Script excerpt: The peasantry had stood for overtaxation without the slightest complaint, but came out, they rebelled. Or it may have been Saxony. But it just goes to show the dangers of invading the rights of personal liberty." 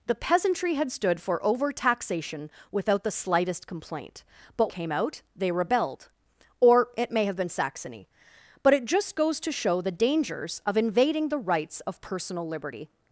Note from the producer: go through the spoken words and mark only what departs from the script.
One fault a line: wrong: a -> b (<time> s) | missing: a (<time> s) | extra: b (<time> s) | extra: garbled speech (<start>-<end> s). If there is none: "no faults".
no faults